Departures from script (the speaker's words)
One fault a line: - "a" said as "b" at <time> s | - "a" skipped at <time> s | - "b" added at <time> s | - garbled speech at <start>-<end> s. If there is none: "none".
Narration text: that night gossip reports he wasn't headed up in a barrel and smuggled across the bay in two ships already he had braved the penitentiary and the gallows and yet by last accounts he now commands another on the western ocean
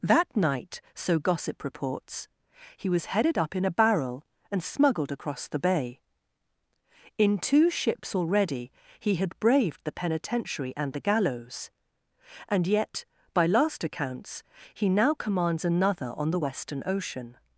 - "so" added at 0.9 s
- "wasn't" said as "was" at 2.9 s